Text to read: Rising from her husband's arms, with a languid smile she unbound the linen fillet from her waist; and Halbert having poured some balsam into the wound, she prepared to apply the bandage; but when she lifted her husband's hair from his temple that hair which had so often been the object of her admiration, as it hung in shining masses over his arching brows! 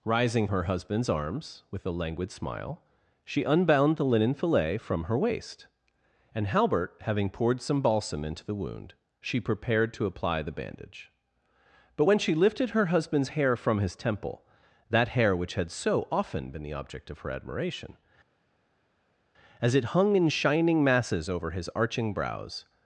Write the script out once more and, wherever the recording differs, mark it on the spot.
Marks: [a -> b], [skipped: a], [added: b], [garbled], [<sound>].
Rising [skipped: from] her husband's arms, with a languid smile she unbound the linen fillet from her waist; and Halbert having poured some balsam into the wound, she prepared to apply the bandage; but when she lifted her husband's hair from his temple that hair which had so often been the object of her admiration, as it hung in shining masses over his arching brows!